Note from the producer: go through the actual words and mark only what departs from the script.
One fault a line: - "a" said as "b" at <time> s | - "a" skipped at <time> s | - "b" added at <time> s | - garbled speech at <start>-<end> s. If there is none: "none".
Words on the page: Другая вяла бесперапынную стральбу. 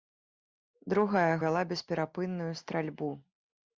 none